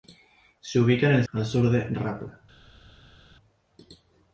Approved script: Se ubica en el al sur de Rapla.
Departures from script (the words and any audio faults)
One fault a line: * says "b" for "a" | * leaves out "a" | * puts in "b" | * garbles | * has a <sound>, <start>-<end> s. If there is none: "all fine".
all fine